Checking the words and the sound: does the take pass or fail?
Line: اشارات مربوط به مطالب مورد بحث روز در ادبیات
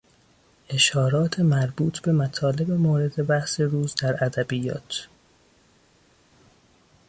pass